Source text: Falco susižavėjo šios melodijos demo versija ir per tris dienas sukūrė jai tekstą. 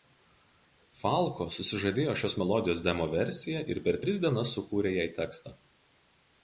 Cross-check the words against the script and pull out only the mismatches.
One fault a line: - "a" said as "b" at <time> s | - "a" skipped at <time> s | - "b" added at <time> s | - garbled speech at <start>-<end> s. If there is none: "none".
none